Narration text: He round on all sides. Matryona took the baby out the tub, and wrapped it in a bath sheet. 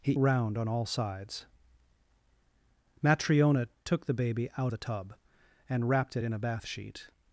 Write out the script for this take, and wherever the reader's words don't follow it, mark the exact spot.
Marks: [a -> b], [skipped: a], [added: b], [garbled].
He round on all sides. Matryona took the baby out the tub, and wrapped it in a bath sheet.